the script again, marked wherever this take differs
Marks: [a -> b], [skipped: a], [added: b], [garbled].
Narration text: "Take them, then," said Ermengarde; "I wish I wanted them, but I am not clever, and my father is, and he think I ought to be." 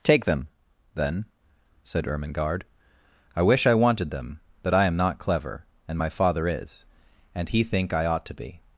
"Take them, then," said Ermengarde; "I wish I wanted them, but I am not clever, and my father is, and he think I ought to be."